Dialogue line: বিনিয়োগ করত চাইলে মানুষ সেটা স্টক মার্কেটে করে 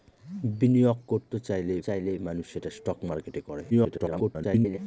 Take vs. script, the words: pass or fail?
fail